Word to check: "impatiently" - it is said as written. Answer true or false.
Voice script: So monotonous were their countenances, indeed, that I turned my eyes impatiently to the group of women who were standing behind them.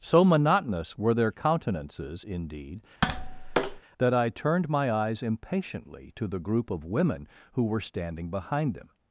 true